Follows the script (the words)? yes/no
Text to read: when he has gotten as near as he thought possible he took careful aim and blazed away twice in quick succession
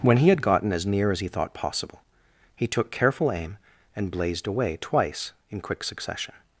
no